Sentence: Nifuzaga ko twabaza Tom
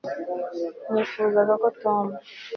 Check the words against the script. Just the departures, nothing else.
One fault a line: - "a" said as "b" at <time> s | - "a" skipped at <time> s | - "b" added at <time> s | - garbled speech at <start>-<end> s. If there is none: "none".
- "twabaza" skipped at 1.7 s